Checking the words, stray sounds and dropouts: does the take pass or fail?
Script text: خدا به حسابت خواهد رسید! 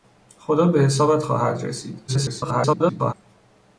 fail